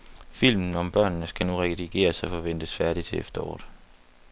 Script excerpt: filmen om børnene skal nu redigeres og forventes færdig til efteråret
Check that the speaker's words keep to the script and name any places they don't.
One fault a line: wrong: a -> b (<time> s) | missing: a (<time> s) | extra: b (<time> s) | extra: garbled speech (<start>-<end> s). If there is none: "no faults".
no faults